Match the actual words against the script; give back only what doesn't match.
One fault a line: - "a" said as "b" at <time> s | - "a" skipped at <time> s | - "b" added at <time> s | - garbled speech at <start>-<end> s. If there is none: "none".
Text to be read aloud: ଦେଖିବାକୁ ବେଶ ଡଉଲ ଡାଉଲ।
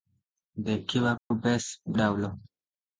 - "ଡଉଲ" skipped at 1.9 s